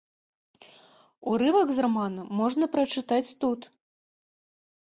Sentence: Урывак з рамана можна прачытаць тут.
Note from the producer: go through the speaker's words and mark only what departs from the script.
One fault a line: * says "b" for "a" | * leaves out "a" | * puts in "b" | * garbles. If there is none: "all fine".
all fine